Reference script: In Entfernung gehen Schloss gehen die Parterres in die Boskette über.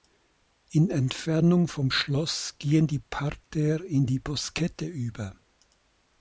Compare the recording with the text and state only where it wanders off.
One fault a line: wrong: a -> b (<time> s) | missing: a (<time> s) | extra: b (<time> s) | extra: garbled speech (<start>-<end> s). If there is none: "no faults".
wrong: gehen -> vom (1.7 s)